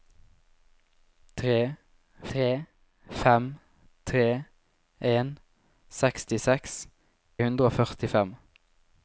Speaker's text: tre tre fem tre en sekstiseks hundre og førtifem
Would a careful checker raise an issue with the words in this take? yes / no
no